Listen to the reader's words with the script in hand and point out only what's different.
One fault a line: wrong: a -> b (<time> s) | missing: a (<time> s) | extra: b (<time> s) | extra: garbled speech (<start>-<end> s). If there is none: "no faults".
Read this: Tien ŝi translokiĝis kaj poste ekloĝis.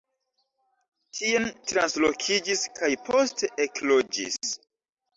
missing: ŝi (1.4 s)